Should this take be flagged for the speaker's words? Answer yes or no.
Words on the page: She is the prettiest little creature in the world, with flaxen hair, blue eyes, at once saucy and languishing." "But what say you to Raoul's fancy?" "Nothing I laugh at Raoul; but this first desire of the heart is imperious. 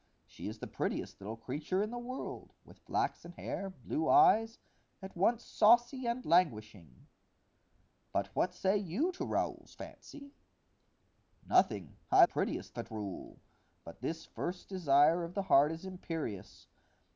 yes